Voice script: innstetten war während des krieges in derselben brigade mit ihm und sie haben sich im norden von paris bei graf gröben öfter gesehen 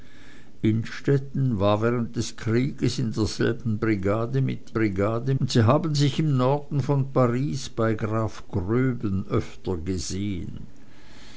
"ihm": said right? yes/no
no